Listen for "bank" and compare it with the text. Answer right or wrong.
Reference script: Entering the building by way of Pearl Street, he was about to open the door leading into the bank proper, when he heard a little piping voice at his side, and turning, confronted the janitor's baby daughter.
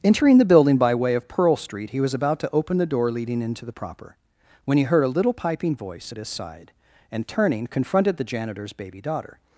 wrong